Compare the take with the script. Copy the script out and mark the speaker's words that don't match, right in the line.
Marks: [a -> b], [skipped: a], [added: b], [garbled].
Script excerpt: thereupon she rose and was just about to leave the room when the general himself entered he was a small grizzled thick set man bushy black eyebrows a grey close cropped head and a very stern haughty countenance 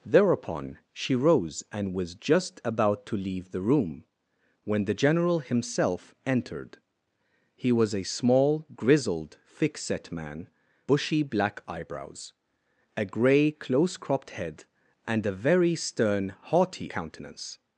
thereupon she rose and was just about to leave the room when the general himself entered he was a small grizzled thick set man bushy black eyebrows a grey close cropped head and a very stern haughty countenance